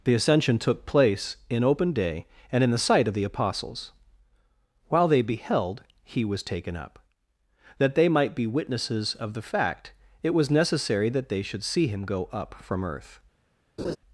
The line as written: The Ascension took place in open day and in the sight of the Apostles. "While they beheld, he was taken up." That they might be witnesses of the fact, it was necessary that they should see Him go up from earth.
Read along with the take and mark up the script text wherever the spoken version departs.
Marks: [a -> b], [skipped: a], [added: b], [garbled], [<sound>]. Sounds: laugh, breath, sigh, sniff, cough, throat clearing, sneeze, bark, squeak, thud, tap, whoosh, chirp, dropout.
The Ascension took place in open day and in the sight of the Apostles. "While they beheld, he was taken up." That they might be witnesses of the fact, it was necessary that they should see Him go up from earth. [laugh]